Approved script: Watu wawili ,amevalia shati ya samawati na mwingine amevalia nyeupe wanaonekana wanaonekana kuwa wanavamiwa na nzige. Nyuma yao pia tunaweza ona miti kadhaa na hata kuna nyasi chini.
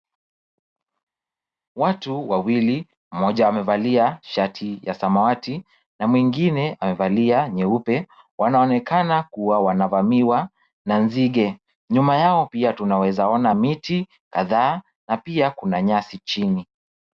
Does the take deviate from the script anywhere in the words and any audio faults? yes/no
yes